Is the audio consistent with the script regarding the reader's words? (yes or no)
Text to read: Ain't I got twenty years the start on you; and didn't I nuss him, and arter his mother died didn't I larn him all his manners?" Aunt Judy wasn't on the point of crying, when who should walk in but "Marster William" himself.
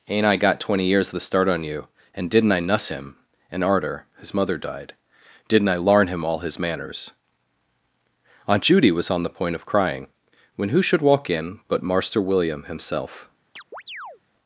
no